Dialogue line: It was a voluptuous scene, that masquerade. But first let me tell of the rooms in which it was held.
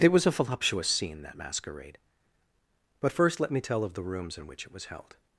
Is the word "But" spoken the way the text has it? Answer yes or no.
yes